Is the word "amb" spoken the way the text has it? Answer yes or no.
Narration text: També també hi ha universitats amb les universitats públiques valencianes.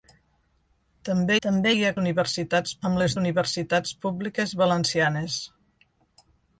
yes